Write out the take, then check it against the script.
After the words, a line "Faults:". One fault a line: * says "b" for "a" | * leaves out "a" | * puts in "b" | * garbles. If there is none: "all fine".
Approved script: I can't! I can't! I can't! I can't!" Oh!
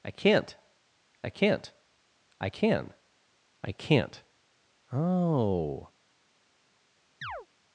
I can't! I can't! I can! I can't!" Oh!
Faults:
* says "can" for "can't"